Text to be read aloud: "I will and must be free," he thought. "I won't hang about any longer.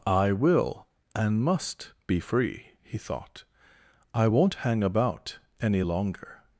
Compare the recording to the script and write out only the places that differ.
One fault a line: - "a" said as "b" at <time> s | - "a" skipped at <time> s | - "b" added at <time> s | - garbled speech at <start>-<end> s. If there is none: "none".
none